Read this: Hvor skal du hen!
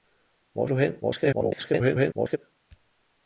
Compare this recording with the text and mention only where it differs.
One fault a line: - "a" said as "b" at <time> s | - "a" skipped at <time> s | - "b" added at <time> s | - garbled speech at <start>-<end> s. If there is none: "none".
- "skal" skipped at 0.7 s
- garbled speech at 1.0-2.4 s